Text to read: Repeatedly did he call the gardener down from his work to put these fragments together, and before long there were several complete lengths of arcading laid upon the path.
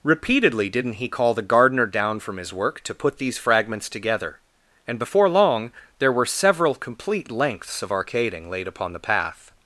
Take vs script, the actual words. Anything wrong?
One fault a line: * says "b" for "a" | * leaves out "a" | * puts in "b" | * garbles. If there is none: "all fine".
* says "didn't" for "did"